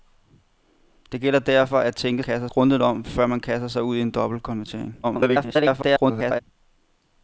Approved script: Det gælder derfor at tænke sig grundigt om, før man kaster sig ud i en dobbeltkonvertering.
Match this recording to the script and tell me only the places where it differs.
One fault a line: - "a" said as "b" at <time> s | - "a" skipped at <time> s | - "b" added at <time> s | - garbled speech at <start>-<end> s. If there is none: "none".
- "sig" said as "kaster" at 2.2 s
- garbled speech at 5.0-6.4 s